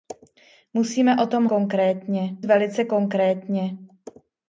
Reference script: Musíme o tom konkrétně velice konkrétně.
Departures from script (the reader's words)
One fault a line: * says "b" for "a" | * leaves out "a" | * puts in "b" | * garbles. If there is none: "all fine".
all fine